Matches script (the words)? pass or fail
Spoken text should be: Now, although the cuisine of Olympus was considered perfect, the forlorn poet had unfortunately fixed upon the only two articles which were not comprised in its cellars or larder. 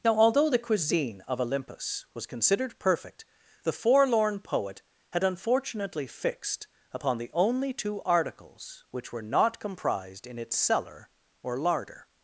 fail